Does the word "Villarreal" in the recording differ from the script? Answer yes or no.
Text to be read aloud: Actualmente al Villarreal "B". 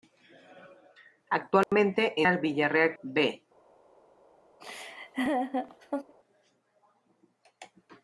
no